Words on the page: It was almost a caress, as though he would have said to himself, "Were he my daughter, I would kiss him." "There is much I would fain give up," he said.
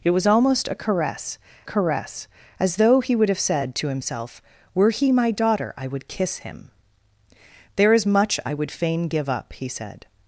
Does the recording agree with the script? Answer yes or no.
no